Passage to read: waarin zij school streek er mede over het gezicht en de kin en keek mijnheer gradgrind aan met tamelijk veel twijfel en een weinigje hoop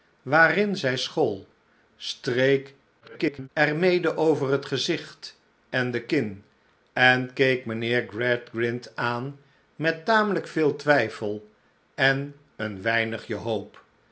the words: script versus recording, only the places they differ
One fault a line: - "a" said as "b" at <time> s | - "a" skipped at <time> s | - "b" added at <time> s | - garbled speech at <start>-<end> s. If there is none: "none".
- garbled speech at 3.0-3.5 s